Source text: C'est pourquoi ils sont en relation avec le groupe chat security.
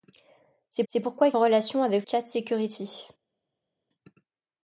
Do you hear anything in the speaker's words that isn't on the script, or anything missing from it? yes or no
yes